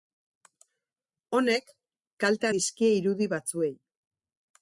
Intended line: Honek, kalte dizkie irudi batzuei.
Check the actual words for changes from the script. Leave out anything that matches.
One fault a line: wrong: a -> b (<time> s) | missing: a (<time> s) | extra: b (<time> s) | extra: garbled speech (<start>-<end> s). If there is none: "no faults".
no faults